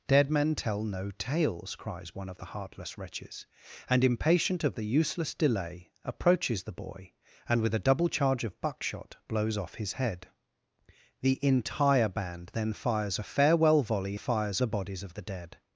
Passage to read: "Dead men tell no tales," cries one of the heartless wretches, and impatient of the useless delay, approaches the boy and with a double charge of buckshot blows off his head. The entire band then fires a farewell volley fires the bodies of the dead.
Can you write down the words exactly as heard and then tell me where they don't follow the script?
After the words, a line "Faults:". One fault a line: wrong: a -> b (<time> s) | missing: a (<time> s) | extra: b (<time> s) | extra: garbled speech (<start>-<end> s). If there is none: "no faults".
"Dead men tell no tales," cries one of the heartless wretches, and impatient of the useless delay, approaches the boy and with a double charge of buckshot blows off his head. The entire band then fires a farewell volley fires the bodies of the dead.
Faults:
no faults